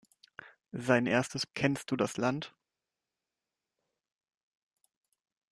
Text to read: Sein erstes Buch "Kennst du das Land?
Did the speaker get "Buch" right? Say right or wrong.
wrong